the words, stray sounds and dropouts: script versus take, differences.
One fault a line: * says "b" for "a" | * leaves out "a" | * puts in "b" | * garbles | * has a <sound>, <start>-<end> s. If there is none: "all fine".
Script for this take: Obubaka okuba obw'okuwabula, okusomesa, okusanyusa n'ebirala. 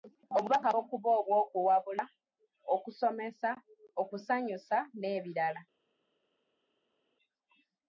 all fine